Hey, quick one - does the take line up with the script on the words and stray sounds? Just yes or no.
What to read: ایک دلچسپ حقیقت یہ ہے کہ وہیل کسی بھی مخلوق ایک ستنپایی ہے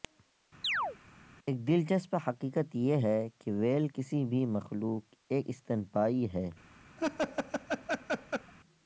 no